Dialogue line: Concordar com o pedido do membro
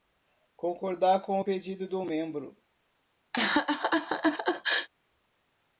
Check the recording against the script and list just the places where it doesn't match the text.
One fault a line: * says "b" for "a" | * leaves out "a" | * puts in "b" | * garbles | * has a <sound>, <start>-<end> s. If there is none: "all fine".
* has a laugh, 3.3-4.9 s